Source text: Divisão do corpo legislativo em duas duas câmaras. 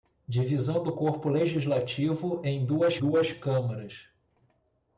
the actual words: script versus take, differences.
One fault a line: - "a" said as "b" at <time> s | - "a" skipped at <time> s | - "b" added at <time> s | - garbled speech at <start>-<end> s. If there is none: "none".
none